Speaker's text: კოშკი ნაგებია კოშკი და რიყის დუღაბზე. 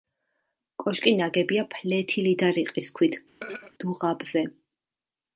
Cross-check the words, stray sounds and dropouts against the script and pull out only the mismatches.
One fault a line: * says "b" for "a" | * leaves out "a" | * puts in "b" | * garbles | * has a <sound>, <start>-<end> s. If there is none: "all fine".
* says "ფლეთილი" for "კოშკი"
* puts in "ქვით"
* has a throat clearing, 3.4-3.7 s